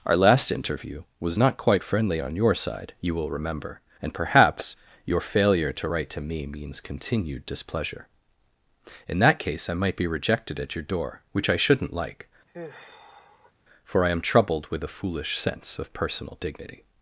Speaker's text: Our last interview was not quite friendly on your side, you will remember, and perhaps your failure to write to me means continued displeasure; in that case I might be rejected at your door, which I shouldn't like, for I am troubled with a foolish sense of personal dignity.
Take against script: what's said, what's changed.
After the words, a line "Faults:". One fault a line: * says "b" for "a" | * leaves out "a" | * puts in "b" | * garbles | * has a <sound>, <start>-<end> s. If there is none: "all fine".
Our last interview was not quite friendly on your side, you will remember, and perhaps your failure to write to me means continued displeasure; in that case I might be rejected at your door, which I shouldn't like, for I am troubled with a foolish sense of personal dignity.
Faults:
* has a sigh, 12.5-13.5 s